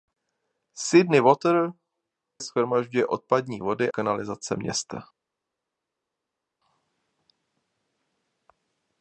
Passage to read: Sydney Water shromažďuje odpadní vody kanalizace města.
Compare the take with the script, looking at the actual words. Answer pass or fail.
pass